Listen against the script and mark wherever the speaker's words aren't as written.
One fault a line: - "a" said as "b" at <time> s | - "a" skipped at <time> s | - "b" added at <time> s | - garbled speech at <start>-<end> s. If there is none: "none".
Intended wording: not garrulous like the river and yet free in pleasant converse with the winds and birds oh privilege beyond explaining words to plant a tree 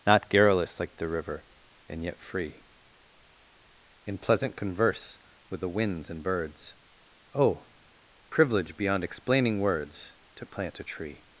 none